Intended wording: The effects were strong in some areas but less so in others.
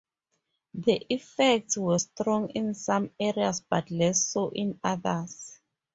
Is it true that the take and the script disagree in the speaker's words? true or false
false